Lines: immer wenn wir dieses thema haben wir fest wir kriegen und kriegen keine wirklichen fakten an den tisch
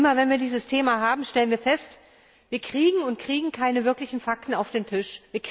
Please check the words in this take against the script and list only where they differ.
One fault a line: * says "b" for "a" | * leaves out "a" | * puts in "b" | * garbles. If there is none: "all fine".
* puts in "stellen"
* says "auf" for "an"